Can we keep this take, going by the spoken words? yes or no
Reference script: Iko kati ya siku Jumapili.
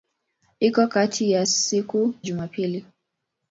yes